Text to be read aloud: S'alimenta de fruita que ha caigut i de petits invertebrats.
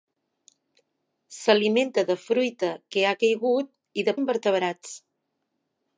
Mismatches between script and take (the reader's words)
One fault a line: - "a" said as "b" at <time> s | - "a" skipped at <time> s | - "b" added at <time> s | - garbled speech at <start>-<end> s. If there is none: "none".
- "petits" skipped at 4.2 s